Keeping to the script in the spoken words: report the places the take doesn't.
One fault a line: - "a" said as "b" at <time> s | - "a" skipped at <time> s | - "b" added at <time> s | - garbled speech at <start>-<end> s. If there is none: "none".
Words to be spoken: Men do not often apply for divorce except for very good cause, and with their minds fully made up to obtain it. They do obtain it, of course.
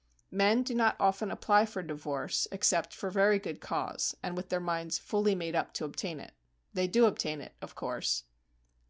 none